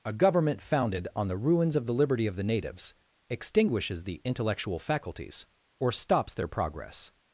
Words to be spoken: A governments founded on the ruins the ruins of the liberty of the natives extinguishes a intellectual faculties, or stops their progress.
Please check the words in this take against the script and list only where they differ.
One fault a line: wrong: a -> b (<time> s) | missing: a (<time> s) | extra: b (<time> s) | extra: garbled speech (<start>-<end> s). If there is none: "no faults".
wrong: governments -> government (0.1 s)
missing: the ruins (1.8 s)
wrong: a -> the (4.0 s)